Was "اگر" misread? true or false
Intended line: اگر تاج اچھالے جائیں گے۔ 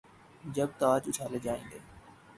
true